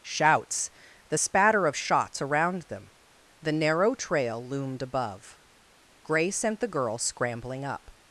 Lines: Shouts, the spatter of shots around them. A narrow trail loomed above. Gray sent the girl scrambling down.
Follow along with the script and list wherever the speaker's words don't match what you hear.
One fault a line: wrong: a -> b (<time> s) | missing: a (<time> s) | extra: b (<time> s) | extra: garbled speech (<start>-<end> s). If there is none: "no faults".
wrong: A -> The (3.4 s)
wrong: down -> up (7.6 s)